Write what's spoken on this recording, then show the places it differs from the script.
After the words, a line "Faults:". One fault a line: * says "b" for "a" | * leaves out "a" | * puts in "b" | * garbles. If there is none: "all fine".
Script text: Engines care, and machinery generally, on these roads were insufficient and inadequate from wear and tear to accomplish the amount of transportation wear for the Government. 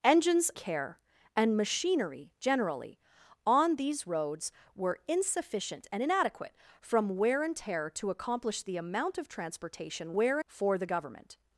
Engines care, and machinery generally, on these roads were insufficient and inadequate from wear and tear to accomplish the amount of transportation wear for the Government.
Faults:
all fine